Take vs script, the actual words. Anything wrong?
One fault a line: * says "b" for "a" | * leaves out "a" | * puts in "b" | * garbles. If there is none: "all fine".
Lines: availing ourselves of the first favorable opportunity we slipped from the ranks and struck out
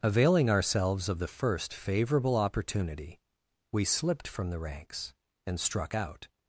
all fine